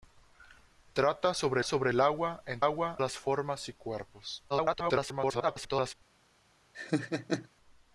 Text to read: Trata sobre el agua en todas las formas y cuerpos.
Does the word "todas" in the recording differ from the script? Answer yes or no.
yes